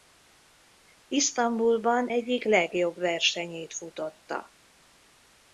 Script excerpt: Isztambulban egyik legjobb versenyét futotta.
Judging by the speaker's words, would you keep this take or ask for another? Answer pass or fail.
pass